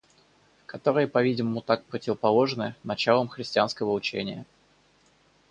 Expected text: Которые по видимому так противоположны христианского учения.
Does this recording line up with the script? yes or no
no